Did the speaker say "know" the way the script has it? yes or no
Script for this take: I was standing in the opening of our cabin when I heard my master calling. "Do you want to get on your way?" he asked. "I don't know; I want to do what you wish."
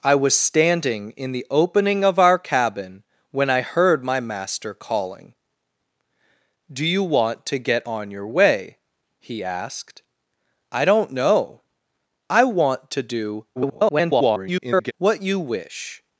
yes